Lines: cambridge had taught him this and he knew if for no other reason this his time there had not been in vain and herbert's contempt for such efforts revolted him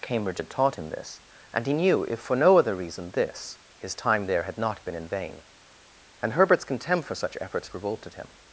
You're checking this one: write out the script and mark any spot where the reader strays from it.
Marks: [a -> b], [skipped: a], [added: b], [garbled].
cambridge had taught him this and he knew if for no other reason this his time there had not been in vain and herbert's contempt for such efforts revolted him